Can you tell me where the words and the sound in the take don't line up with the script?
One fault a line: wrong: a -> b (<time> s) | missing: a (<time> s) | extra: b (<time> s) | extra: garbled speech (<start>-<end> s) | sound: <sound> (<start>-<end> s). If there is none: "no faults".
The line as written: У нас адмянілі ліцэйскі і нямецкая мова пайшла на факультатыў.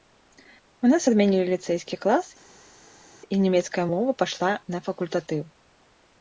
extra: клас (2.0 s)